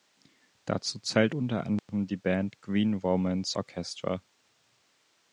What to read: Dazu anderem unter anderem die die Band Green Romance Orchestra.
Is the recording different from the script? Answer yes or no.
yes